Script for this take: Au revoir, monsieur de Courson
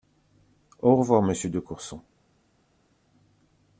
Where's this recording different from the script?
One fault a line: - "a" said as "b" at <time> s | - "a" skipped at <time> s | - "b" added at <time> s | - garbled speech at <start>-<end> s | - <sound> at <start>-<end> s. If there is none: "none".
none